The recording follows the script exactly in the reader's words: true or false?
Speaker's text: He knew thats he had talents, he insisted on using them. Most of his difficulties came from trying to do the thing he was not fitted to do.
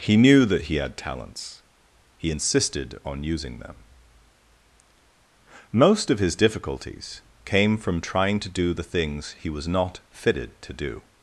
false